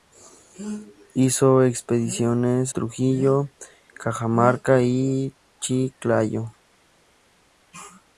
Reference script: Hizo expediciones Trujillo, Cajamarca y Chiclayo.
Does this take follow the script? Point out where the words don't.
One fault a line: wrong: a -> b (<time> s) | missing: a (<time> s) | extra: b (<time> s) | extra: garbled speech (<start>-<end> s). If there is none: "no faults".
no faults